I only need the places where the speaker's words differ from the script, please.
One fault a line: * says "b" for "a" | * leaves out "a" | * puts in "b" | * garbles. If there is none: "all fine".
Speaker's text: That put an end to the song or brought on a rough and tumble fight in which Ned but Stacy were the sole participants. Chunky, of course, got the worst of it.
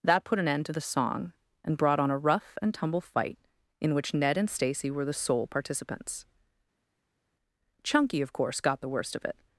* says "and" for "or"
* says "and" for "but"